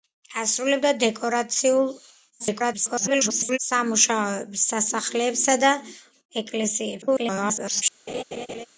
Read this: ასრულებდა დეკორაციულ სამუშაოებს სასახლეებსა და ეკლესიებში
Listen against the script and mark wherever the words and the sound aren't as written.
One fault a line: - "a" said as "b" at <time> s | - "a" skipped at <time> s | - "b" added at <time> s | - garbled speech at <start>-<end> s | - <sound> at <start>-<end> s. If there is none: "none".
- garbled speech at 2.4-3.6 s
- garbled speech at 7.0-7.8 s
- laugh at 8.1-8.7 s